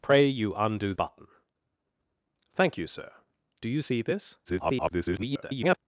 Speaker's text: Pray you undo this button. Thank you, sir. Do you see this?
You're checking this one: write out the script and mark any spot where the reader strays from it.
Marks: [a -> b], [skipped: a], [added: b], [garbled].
Pray you undo [skipped: this] button. Thank you, sir. Do you see this? [garbled]